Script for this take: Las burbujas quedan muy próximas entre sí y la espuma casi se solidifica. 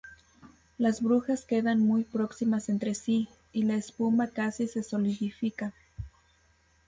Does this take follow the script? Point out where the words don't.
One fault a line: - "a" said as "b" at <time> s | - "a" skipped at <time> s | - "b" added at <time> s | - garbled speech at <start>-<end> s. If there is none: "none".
none